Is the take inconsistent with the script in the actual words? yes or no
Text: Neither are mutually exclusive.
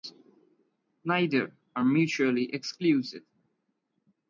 no